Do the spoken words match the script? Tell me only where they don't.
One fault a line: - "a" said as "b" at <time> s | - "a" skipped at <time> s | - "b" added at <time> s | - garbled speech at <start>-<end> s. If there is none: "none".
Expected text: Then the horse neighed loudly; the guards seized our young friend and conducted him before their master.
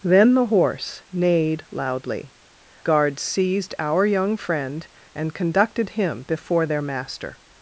- "the" skipped at 2.3 s